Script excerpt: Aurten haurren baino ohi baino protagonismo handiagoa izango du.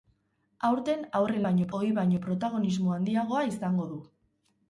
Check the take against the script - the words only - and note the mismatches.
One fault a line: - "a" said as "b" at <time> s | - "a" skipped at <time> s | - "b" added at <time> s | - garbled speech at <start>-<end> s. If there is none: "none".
none